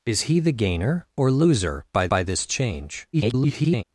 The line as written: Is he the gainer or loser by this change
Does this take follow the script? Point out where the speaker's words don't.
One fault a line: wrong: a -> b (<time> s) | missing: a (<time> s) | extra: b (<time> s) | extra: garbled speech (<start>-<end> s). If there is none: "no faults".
extra: by (2.1 s)
extra: garbled speech (3.1-3.8 s)